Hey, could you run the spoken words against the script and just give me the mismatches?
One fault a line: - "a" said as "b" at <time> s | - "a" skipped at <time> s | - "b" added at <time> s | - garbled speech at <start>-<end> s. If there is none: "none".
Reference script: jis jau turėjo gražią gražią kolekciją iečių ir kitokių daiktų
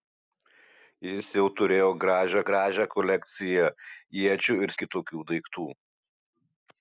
none